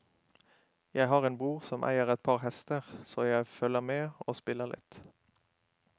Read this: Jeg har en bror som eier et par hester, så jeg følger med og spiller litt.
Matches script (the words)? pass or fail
pass